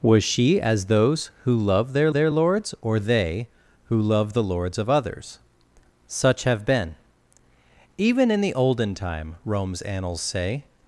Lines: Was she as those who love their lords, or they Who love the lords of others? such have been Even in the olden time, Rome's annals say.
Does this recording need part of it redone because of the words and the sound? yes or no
yes